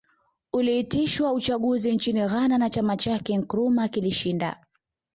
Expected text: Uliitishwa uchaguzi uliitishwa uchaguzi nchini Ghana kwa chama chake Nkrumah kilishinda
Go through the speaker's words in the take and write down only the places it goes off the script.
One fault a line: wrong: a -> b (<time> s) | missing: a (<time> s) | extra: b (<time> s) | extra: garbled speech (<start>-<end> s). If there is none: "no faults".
missing: uliitishwa uchaguzi (1.9 s)
wrong: kwa -> na (2.6 s)